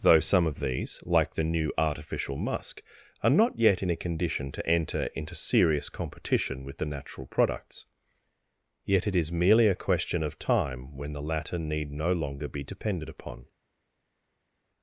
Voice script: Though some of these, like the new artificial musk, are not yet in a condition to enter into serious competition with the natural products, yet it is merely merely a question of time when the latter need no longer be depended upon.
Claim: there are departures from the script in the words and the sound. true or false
true